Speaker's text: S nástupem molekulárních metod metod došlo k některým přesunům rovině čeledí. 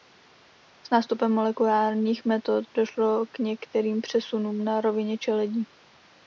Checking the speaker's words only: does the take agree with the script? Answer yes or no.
no